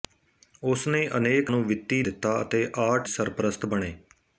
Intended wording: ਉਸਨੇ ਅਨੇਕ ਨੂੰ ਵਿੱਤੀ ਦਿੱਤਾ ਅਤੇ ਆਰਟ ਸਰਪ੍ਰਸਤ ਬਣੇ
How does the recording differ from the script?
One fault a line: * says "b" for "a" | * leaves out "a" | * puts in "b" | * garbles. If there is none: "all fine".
all fine